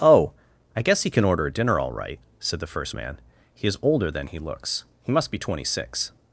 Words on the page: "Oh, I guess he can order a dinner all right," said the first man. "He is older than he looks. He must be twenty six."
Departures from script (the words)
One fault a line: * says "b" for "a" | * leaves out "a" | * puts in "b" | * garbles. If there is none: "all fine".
all fine